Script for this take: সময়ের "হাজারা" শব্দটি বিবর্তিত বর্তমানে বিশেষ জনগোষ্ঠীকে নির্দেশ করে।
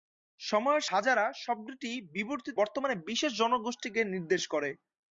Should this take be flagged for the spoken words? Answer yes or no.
no